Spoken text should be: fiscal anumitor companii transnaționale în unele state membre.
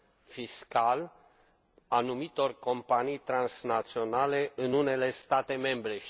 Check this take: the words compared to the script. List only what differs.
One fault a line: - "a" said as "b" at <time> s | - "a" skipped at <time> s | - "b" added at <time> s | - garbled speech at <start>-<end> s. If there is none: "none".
none